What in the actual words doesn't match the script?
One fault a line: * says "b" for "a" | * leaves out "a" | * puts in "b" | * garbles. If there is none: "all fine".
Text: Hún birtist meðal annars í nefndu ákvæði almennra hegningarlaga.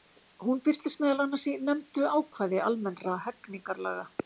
all fine